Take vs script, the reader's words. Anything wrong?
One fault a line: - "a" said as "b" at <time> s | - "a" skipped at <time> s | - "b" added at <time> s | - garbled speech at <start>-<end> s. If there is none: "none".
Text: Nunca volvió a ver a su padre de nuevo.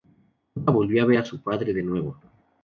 none